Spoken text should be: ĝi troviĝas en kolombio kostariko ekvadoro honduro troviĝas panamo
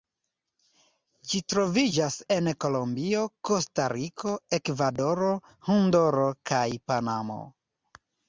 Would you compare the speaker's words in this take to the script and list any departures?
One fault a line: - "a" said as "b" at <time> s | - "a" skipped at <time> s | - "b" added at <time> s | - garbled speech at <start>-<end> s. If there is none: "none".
- "troviĝas" said as "kaj" at 6.5 s